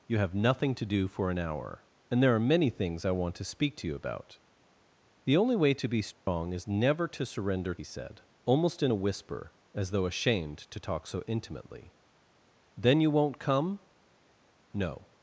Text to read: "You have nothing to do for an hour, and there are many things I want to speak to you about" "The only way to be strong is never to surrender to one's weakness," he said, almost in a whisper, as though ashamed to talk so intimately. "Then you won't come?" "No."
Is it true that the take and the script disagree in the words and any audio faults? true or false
true